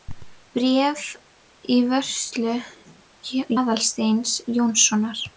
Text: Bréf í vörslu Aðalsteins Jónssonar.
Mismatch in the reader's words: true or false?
false